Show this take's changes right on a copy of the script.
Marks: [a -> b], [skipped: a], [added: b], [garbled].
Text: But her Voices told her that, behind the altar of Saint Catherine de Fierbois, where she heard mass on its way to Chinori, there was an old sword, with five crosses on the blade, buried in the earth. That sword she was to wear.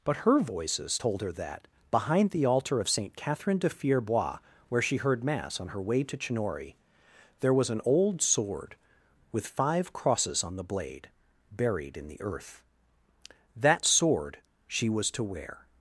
But her Voices told her that, behind the altar of Saint Catherine de Fierbois, where she heard mass on [its -> her] way to Chinori, there was an old sword, with five crosses on the blade, buried in the earth. That sword she was to wear.